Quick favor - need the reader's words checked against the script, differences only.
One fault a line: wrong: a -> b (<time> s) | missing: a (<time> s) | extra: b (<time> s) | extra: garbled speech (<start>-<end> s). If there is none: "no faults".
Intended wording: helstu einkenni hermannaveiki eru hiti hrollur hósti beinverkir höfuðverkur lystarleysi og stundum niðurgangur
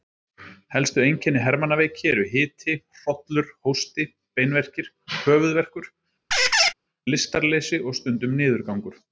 no faults